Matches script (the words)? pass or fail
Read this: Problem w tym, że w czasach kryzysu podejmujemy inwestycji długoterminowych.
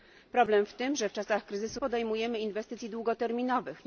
pass